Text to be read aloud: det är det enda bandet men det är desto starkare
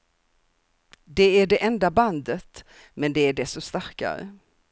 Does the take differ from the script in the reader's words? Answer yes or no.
no